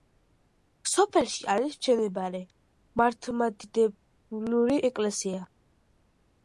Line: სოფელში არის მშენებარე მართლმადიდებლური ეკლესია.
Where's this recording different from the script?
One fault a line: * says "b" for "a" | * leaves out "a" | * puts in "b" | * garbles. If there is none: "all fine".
all fine